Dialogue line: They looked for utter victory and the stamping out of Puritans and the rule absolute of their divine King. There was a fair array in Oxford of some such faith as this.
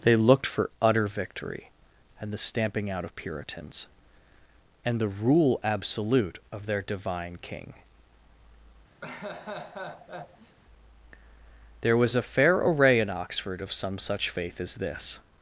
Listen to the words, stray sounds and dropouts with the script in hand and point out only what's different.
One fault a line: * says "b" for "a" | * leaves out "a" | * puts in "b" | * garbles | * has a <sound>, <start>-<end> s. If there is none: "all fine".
* has a laugh, 9.0-10.6 s